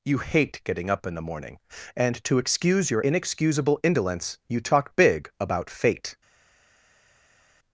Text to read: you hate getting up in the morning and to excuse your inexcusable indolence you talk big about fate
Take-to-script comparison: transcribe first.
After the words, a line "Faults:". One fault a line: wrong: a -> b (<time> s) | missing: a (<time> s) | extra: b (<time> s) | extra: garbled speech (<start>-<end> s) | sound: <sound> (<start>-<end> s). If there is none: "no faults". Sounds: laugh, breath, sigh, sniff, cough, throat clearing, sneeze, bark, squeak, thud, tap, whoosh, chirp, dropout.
you hate getting up in the morning and to excuse your inexcusable indolence you talk big about fate
Faults:
no faults